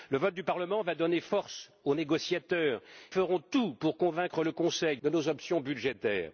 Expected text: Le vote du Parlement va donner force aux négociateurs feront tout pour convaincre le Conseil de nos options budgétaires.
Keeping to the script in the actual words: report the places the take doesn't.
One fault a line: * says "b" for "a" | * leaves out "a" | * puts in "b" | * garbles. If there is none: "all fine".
all fine